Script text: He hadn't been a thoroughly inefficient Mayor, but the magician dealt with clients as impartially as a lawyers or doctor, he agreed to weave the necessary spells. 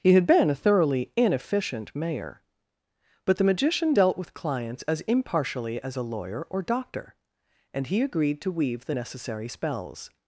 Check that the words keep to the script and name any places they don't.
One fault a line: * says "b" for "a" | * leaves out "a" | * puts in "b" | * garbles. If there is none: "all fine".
* says "had" for "hadn't"
* says "lawyer" for "lawyers"
* puts in "and"